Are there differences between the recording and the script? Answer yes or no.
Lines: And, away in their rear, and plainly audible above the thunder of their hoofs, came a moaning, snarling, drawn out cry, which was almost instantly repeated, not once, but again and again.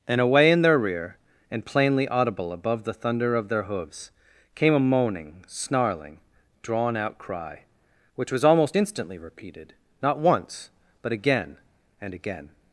no